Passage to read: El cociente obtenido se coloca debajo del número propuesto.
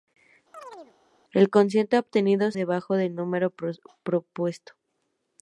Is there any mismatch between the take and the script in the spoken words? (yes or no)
yes